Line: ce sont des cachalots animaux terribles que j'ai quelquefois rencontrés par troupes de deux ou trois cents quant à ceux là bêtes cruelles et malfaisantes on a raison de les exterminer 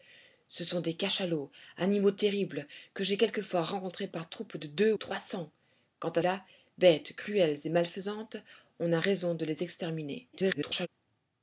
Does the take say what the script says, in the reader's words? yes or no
no